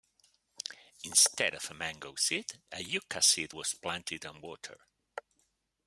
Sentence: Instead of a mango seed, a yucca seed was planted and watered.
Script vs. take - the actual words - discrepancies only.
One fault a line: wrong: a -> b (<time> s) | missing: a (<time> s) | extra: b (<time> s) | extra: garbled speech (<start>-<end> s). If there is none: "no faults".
no faults